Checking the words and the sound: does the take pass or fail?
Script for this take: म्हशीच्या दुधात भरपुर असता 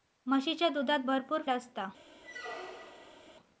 fail